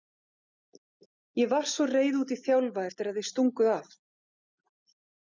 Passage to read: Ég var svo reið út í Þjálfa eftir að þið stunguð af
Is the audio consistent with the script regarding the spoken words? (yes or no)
yes